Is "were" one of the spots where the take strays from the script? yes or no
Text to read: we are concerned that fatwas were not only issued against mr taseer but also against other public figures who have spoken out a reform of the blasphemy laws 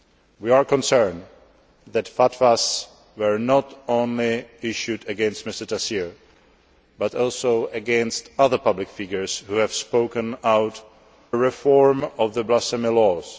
no